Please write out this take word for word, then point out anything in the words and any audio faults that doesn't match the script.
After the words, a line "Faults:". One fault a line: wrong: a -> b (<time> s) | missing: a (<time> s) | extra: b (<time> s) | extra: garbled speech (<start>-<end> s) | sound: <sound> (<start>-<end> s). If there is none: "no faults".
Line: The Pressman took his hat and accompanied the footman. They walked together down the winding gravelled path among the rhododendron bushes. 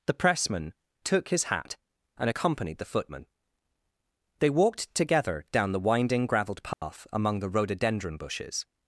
The Pressman took his hat and accompanied the footman. They walked together down the winding gravelled path among the rhododendron bushes.
Faults:
sound: dropout (6.7-6.8 s)